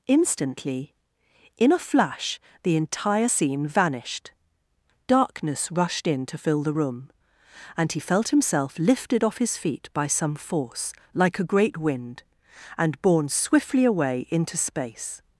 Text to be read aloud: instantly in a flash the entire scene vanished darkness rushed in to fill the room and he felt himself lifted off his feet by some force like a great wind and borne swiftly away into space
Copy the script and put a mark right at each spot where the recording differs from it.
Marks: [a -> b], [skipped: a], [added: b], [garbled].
instantly in a flash the entire scene vanished darkness rushed in to fill the room and he felt himself lifted off his feet by some force like a great wind and borne swiftly away into space